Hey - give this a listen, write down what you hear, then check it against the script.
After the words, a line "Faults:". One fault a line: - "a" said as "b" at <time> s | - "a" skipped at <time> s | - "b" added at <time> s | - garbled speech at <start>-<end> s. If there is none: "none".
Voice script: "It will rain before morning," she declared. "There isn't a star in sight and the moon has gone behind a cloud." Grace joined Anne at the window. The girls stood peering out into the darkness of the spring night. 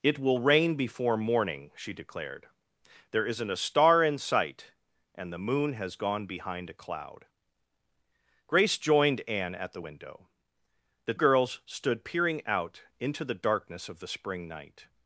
"It will rain before morning," she declared. "There isn't a star in sight and the moon has gone behind a cloud." Grace joined Anne at the window. The girls stood peering out into the darkness of the spring night.
Faults:
none